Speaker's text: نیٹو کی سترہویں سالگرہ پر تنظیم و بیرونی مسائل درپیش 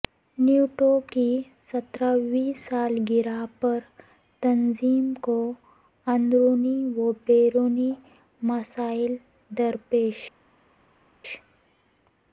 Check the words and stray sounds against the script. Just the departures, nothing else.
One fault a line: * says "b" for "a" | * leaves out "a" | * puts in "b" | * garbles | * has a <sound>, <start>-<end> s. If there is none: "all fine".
* puts in "کو اندرونی"